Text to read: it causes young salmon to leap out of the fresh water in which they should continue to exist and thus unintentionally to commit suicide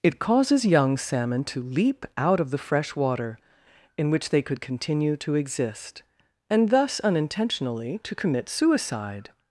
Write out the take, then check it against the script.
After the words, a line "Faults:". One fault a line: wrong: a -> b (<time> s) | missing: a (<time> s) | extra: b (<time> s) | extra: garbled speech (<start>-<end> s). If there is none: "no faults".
it causes young salmon to leap out of the fresh water in which they could continue to exist and thus unintentionally to commit suicide
Faults:
wrong: should -> could (4.4 s)